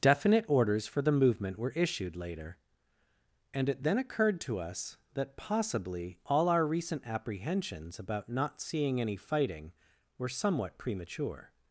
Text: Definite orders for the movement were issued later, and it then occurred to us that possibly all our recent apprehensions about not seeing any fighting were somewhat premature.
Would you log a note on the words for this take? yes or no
no